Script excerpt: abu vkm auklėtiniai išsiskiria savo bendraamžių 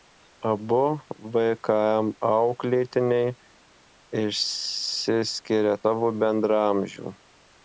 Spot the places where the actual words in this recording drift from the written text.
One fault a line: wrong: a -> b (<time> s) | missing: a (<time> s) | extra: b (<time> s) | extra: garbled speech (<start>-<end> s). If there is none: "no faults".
no faults